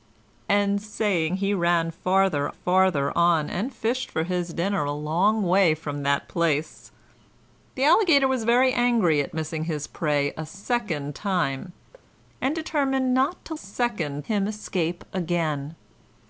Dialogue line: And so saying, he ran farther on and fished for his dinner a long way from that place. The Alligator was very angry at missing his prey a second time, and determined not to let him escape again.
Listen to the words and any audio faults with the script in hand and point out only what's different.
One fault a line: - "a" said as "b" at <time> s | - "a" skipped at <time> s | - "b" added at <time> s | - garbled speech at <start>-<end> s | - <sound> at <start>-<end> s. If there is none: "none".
- "so" skipped at 0.8 s
- "farther" added at 2.5 s
- thud at 11.9-12.1 s
- "let" said as "second" at 13.5 s